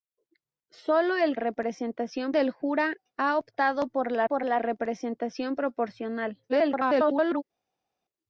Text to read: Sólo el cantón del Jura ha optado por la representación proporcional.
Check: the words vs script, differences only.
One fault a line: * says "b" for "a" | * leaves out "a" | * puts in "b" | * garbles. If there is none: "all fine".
* says "representación" for "cantón"
* puts in "por la"
* garbles